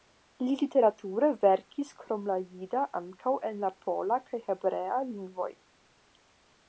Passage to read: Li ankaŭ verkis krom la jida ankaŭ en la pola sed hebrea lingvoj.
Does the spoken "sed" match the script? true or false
false